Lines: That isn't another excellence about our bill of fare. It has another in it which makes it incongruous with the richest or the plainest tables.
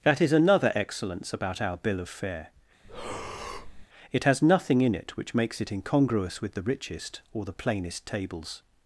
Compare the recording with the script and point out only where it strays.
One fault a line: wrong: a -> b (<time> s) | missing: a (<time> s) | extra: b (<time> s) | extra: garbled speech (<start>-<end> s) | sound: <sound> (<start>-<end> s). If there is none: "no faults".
wrong: isn't -> is (0.2 s)
sound: breath (2.8-3.9 s)
wrong: another -> nothing (4.4 s)